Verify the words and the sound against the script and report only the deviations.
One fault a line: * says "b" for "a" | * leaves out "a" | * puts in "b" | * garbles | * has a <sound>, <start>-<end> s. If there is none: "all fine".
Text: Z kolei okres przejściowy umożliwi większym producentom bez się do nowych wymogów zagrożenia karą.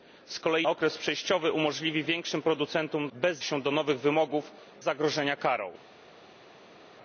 all fine